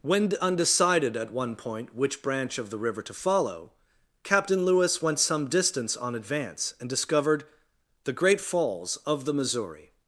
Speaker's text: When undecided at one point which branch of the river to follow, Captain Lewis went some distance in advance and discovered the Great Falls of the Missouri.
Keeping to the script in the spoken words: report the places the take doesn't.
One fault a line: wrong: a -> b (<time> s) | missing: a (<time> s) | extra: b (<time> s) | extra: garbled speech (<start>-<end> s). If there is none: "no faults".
wrong: in -> on (6.0 s)